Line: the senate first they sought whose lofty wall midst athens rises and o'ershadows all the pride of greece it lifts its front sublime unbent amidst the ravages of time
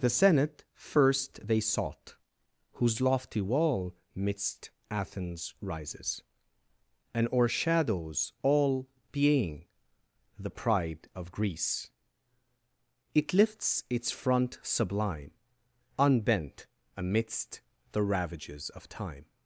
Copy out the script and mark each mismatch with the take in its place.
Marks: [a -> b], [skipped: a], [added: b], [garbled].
the senate first they sought whose lofty wall midst athens rises and o'ershadows all [added: being] the pride of greece it lifts its front sublime unbent amidst the ravages of time